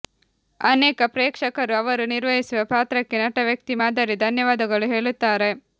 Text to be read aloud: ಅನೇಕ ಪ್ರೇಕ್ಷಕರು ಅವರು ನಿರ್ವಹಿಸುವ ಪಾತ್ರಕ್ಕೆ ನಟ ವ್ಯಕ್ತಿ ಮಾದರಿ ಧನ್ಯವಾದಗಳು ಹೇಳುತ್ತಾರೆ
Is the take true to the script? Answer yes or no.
yes